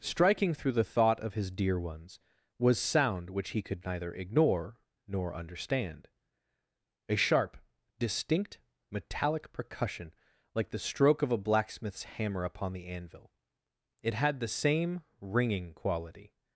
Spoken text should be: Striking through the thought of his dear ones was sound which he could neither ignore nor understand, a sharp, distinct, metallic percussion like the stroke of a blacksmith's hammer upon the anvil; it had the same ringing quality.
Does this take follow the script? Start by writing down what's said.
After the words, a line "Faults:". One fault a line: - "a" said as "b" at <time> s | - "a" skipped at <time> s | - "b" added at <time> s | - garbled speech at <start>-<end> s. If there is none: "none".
Striking through the thought of his dear ones was sound which he could neither ignore nor understand, a sharp, distinct, metallic percussion like the stroke of a blacksmith's hammer upon the anvil; it had the same ringing quality.
Faults:
none